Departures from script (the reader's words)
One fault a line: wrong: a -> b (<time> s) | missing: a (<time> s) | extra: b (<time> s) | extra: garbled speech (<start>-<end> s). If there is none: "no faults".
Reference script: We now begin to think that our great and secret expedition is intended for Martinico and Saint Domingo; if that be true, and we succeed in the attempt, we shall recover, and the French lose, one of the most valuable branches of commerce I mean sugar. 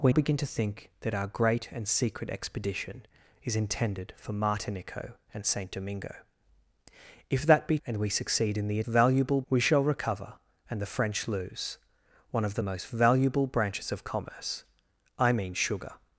missing: now (0.1 s)
missing: true (7.8 s)
wrong: attempt -> valuable (8.8 s)